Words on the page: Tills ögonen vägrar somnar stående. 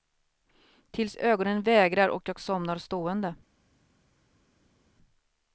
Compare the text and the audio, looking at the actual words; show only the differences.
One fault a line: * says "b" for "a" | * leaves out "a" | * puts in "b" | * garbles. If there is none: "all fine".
* puts in "och jag"